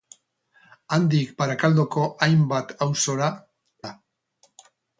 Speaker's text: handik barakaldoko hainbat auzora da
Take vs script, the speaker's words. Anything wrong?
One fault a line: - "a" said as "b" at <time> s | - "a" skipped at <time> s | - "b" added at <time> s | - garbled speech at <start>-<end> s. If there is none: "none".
none